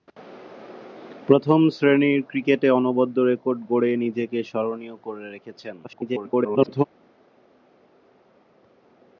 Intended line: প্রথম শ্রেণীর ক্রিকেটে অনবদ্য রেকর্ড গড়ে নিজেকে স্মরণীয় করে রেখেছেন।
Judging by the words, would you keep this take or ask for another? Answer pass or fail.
fail